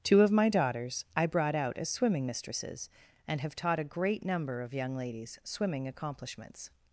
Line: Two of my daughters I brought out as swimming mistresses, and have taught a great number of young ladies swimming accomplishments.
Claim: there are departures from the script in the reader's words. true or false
false